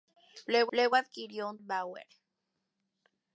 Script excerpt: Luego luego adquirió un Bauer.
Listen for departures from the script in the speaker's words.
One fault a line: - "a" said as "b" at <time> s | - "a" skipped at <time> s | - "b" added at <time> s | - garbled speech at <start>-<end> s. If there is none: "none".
none